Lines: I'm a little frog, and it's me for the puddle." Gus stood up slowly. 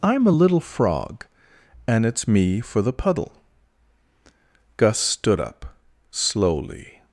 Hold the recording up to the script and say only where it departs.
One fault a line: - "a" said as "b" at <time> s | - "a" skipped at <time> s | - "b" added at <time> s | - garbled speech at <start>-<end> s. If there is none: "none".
none